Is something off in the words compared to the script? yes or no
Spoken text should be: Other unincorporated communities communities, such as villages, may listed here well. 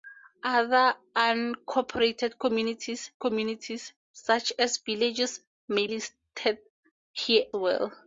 no